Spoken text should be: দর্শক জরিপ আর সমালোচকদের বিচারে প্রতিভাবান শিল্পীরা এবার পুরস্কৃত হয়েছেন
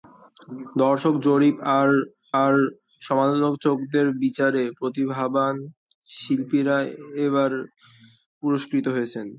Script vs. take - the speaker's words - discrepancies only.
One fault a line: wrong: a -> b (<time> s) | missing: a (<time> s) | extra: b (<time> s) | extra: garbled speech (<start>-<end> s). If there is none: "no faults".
extra: আর (2.4 s)